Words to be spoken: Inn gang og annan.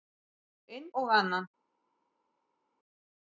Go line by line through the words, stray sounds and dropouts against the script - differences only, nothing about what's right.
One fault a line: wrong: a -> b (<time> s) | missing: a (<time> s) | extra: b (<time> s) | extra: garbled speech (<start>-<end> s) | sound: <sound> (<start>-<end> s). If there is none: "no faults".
missing: gang (0.9 s)